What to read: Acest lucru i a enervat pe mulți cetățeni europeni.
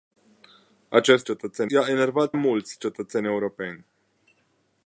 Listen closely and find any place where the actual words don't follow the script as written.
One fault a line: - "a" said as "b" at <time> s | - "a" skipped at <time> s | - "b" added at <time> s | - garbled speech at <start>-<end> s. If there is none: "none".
- "lucru" said as "cetățeni" at 1.2 s
- "pe" skipped at 2.3 s